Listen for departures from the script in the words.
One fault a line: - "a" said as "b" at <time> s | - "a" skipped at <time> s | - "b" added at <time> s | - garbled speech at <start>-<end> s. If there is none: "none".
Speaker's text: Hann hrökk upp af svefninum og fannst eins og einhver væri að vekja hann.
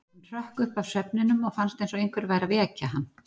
none